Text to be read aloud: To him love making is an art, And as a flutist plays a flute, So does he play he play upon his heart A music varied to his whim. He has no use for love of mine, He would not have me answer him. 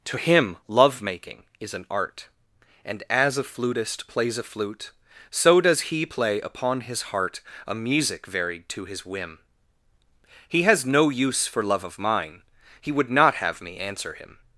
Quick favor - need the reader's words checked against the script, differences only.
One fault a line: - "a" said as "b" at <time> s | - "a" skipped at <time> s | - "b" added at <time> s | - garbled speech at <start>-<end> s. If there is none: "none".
- "he play" skipped at 6.4 s